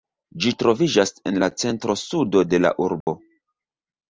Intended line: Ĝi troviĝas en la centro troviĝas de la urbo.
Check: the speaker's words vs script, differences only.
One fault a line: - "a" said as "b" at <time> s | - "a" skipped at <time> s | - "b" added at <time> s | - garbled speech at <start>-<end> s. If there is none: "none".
- "troviĝas" said as "sudo" at 2.0 s